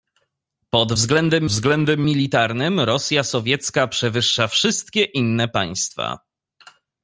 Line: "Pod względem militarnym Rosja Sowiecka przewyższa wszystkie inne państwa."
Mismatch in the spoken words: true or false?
true